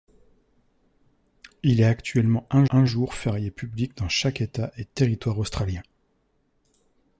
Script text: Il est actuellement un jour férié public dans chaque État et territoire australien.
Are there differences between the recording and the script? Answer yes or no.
yes